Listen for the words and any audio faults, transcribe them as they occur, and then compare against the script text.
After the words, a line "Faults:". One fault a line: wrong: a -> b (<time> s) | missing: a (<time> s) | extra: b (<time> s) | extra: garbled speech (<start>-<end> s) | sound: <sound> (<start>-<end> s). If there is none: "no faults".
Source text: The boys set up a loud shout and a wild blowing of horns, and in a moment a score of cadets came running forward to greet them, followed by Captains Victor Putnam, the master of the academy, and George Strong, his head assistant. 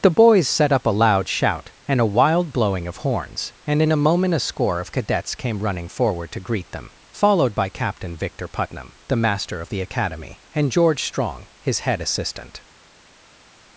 The boys set up a loud shout and a wild blowing of horns, and in a moment a score of cadets came running forward to greet them, followed by Captain Victor Putnam, the master of the academy, and George Strong, his head assistant.
Faults:
wrong: Captains -> Captain (7.7 s)